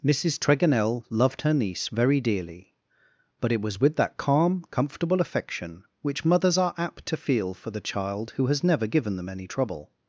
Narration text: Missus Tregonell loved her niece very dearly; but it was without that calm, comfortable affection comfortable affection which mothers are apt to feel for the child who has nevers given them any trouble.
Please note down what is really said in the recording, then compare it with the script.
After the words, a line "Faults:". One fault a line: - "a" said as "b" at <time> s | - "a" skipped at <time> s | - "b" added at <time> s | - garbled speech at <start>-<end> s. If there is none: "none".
Missus Tregonell loved her niece very dearly; but it was with that calm, comfortable affection which mothers are apt to feel for the child who has never given them any trouble.
Faults:
- "without" said as "with" at 3.8 s
- "comfortable affection" skipped at 5.8 s
- "nevers" said as "never" at 8.6 s